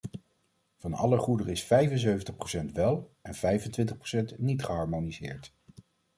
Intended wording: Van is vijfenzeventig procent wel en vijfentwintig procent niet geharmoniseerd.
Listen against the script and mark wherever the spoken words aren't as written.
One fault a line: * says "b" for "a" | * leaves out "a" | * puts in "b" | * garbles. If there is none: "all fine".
* puts in "alle goederen"